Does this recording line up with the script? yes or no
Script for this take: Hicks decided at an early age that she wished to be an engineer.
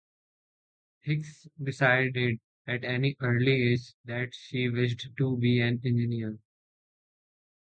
yes